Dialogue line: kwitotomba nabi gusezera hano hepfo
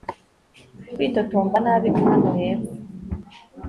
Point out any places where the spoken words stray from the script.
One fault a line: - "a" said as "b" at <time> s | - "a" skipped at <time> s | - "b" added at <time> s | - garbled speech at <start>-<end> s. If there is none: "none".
- "gusezera" skipped at 1.9 s